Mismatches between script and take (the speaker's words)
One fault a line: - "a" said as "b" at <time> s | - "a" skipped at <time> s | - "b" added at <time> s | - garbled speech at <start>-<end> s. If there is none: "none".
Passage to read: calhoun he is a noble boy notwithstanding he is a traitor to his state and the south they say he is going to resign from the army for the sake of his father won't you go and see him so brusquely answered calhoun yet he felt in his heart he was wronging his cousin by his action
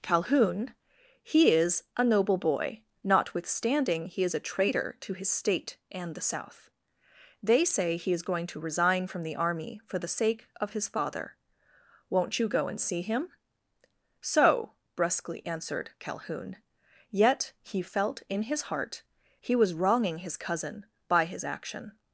none